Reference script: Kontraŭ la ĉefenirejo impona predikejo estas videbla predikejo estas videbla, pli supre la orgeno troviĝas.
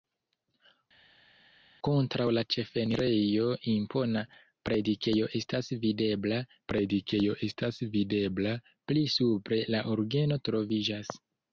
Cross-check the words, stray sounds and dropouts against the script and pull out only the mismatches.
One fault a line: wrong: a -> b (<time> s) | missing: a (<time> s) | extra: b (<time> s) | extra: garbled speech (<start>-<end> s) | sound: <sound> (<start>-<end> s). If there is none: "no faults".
no faults